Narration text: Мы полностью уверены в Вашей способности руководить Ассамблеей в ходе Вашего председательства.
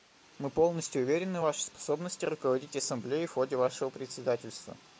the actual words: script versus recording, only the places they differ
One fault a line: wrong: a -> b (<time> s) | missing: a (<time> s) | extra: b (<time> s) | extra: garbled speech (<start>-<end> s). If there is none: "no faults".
no faults